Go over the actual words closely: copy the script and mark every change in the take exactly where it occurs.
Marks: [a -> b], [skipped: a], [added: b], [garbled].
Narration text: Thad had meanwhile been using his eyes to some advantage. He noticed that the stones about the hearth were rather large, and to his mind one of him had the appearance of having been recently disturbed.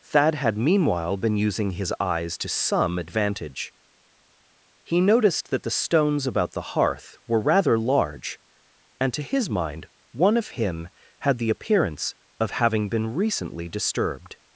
Thad had meanwhile been using his eyes to some advantage. He noticed that the stones about the hearth were rather large, and to his mind one of him had the appearance of having been recently disturbed.